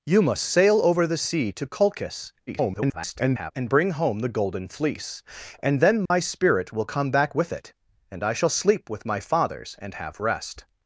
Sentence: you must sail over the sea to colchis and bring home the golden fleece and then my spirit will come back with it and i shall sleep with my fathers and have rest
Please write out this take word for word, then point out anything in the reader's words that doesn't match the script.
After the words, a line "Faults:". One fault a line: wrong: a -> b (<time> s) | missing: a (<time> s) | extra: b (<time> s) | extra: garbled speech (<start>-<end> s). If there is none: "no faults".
you must sail over the sea to colchis [garbled] and bring home the golden fleece and then my spirit will come back with it and i shall sleep with my fathers and have rest
Faults:
extra: garbled speech (2.5-3.5 s)